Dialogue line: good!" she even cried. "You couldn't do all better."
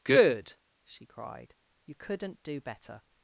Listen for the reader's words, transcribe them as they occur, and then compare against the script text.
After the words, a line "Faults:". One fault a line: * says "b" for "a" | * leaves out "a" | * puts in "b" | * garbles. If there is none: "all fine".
good!" she cried. "You couldn't do better."
Faults:
* leaves out "even"
* leaves out "all"